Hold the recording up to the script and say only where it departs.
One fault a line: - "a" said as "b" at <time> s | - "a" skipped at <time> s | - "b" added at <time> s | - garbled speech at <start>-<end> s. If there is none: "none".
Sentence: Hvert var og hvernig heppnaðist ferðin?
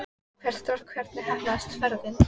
none